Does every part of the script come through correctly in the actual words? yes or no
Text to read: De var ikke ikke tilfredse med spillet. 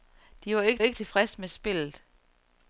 yes